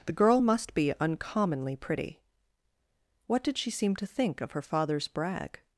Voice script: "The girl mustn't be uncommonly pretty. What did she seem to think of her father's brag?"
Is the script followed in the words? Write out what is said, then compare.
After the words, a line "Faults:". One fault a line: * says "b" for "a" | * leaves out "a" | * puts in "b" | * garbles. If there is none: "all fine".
"The girl must be uncommonly pretty. What did she seem to think of her father's brag?"
Faults:
* says "must" for "mustn't"